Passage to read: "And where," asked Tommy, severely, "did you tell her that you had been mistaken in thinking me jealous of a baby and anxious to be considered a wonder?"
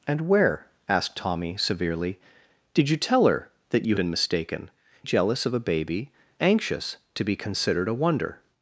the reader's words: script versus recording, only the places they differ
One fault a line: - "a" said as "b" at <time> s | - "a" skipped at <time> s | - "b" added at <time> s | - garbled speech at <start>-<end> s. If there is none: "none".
- "had" skipped at 4.0 s
- "in thinking me" skipped at 4.7 s
- "and" skipped at 6.1 s